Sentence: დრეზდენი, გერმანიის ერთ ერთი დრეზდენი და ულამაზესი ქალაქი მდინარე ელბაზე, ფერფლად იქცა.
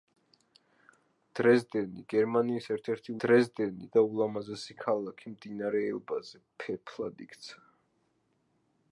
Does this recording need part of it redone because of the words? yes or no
no